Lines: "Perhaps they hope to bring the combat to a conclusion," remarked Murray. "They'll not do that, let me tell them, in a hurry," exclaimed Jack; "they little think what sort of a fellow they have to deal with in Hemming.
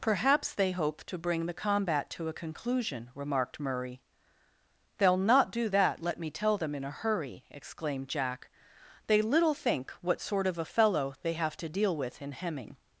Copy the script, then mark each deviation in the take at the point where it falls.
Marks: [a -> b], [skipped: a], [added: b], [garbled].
"Perhaps they hope to bring the combat to a conclusion," remarked Murray. "They'll not do that, let me tell them, in a hurry," exclaimed Jack; "they little think what sort of a fellow they have to deal with in Hemming.